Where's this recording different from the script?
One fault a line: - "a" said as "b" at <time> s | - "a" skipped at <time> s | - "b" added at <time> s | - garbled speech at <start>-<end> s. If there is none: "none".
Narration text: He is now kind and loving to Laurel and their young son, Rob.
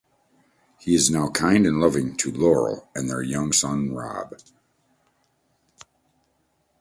none